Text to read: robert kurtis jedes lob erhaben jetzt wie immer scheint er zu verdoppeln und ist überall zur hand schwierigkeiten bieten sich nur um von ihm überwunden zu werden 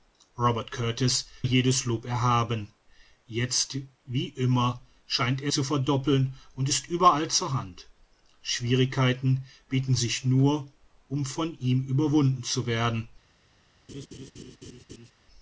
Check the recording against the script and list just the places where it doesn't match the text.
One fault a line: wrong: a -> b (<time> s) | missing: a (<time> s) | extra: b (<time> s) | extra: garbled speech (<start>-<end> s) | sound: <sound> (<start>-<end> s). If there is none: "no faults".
sound: laugh (13.9-15.1 s)